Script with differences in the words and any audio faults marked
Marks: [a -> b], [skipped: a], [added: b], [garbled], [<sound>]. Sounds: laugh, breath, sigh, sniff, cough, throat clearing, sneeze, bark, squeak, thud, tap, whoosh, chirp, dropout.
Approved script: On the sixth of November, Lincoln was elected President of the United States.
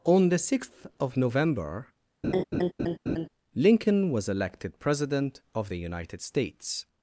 On the sixth of November, [laugh] Lincoln was elected President of the United States.